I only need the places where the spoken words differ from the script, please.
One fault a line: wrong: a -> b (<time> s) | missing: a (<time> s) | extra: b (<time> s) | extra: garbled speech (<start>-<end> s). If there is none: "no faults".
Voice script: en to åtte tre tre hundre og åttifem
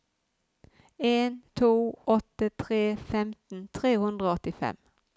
extra: femten (3.1 s)